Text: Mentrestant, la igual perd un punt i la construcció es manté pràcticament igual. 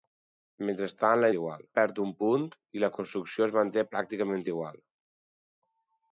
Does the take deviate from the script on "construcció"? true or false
false